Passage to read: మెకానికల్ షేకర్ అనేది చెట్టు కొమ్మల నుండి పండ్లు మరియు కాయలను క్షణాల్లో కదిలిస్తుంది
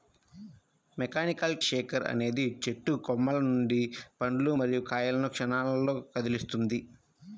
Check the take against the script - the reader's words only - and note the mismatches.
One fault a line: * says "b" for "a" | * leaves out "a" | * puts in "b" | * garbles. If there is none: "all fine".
all fine